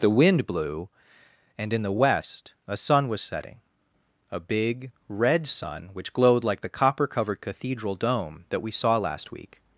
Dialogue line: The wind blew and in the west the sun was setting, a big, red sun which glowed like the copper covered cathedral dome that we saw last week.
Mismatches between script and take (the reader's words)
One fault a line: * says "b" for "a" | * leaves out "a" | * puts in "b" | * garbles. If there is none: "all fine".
* says "a" for "the"